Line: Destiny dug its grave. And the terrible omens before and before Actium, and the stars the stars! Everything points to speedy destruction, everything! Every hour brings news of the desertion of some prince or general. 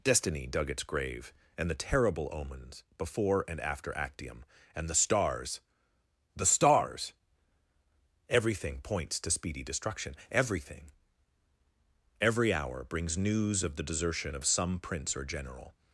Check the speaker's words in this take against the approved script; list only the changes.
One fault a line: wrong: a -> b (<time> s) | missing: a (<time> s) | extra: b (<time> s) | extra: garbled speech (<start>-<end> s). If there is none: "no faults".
wrong: before -> after (3.6 s)